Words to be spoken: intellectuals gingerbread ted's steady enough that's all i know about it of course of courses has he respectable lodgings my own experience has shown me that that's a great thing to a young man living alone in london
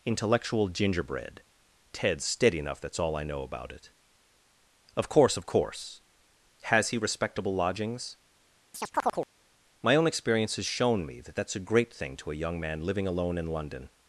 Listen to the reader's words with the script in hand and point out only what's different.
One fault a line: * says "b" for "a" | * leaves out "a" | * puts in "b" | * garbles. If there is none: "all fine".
* says "intellectual" for "intellectuals"
* says "course" for "courses"